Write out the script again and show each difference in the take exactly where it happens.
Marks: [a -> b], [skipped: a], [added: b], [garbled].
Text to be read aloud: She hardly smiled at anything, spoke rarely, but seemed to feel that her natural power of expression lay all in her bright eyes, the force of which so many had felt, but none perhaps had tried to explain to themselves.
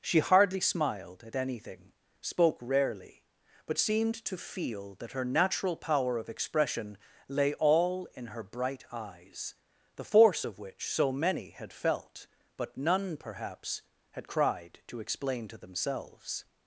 She hardly smiled at anything, spoke rarely, but seemed to feel that her natural power of expression lay all in her bright eyes, the force of which so many had felt, but none perhaps had [tried -> cried] to explain to themselves.